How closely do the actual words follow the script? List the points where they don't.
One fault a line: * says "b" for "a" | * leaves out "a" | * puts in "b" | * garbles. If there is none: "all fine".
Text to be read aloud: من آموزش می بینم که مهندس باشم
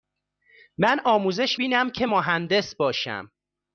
* leaves out "می"